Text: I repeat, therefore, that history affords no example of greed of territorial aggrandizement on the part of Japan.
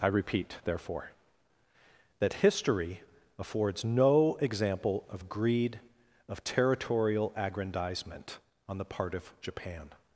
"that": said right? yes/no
yes